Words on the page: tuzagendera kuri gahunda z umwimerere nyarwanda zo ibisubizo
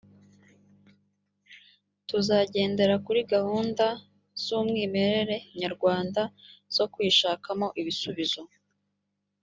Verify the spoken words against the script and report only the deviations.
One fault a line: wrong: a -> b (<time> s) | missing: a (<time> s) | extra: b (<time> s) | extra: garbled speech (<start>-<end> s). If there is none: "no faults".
extra: kwishakamo (6.9 s)